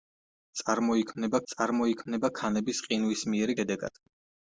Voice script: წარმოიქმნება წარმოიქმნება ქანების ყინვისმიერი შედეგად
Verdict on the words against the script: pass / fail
pass